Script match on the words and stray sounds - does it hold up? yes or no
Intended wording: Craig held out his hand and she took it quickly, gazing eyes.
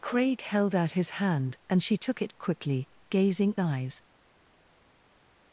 yes